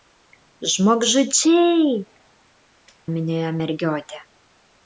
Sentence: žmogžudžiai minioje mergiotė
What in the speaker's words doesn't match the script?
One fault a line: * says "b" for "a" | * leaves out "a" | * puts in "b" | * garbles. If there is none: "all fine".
all fine